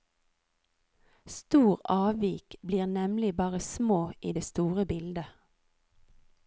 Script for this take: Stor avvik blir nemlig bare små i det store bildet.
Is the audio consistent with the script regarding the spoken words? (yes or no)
yes